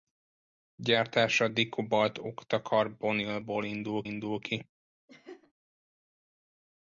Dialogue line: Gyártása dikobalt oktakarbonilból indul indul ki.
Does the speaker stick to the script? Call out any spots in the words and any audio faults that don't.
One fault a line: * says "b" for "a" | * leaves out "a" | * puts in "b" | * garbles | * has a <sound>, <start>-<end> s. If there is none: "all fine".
* has a laugh, 5.1-5.5 s